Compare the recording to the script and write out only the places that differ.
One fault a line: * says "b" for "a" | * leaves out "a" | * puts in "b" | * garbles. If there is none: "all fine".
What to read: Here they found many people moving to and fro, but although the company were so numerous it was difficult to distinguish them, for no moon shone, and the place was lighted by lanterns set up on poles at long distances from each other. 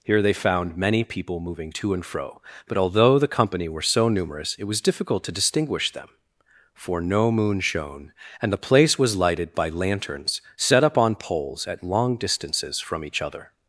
all fine